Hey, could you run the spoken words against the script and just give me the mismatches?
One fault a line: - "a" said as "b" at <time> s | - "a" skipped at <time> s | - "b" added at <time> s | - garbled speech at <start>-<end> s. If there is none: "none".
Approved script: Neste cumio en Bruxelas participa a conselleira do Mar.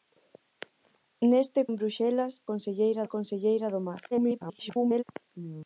- "cumio" skipped at 1.6 s
- "participa" said as "conselleira" at 2.5 s
- garbled speech at 4.1-5.0 s